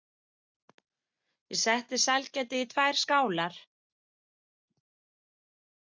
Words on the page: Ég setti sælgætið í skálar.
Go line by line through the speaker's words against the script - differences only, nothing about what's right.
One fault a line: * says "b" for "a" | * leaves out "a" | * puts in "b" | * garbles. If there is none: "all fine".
* puts in "tvær"